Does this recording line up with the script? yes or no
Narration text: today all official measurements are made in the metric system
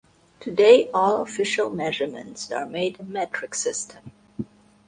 no